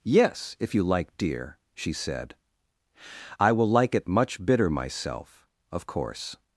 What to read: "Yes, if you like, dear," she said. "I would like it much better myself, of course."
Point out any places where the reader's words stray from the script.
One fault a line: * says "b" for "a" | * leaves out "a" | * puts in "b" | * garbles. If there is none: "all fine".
* says "will" for "would"
* says "bitter" for "better"